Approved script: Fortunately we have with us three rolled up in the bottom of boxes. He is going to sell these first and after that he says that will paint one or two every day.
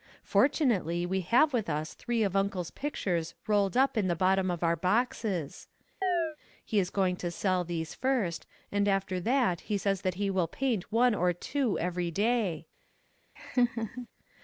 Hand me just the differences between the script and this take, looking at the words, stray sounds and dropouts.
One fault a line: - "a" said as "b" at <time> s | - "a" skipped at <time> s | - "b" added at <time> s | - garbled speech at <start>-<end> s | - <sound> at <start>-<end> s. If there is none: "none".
- "of Uncle's pictures" added at 2.2 s
- "our" added at 4.6 s
- chirp at 6.0-6.4 s
- "he" added at 10.2 s
- laugh at 13.4-14.1 s